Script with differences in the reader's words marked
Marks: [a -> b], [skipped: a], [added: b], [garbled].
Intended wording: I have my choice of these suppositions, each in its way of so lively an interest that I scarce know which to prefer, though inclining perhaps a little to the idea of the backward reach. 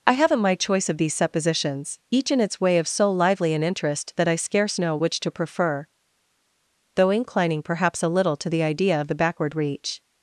I [have -> haven't] my choice of these suppositions, each in its way of so lively an interest that I scarce know which to prefer, though inclining perhaps a little to the idea of the backward reach.